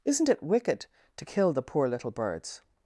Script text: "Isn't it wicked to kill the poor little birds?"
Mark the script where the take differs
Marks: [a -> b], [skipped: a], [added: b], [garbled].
"Isn't it wicked to kill the poor little birds?"